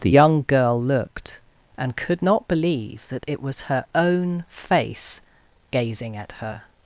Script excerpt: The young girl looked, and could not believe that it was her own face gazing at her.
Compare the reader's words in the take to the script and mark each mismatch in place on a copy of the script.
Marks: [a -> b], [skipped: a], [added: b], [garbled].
The young girl looked, and could not believe that it was her own face gazing at her.